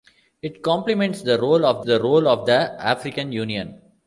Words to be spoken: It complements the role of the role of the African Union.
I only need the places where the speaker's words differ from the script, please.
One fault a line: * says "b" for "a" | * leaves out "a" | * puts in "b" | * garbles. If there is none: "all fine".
all fine